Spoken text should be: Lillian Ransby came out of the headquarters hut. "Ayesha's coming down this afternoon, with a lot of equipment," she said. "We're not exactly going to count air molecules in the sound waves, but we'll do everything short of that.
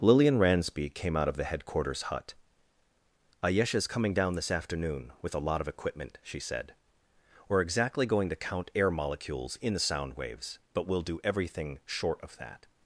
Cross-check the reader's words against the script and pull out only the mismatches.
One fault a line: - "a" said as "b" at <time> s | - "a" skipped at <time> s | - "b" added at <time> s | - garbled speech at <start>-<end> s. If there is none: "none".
- "not" skipped at 7.6 s